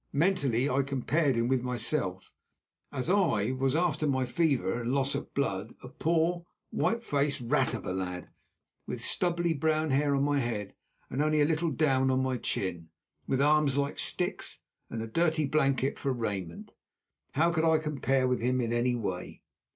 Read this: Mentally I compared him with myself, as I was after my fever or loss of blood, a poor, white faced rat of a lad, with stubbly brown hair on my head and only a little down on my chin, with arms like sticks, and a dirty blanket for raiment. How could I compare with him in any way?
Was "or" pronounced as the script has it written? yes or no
no